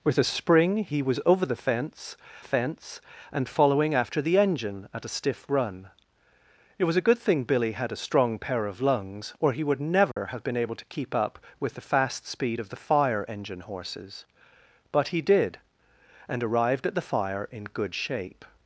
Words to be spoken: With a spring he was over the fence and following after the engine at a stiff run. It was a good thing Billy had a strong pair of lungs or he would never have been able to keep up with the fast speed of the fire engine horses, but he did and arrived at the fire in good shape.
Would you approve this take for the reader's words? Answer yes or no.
no